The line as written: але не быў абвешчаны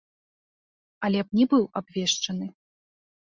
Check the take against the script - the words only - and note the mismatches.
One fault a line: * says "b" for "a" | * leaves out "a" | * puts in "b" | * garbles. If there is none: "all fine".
all fine